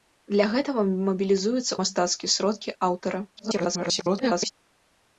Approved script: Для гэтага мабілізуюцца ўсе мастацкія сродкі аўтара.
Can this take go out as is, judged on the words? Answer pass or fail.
fail